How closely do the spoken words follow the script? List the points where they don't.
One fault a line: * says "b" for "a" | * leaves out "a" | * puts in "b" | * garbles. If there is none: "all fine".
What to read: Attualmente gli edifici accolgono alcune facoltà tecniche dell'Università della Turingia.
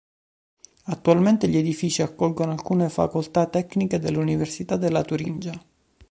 all fine